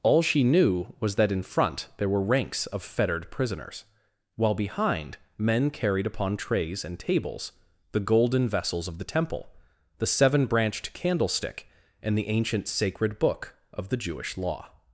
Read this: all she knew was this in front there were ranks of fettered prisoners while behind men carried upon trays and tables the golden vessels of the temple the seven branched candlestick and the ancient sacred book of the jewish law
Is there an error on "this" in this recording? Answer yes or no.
yes